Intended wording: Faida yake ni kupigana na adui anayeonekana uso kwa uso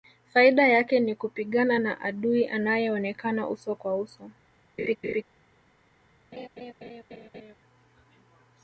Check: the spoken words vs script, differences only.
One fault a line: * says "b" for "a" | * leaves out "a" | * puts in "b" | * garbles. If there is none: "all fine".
all fine